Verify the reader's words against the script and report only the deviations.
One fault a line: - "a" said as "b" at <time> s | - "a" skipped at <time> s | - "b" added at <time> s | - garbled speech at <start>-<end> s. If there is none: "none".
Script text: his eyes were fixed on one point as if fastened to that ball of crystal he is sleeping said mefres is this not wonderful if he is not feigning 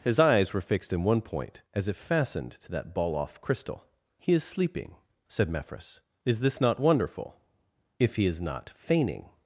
- "on" said as "in" at 0.9 s
- "of" said as "off" at 3.1 s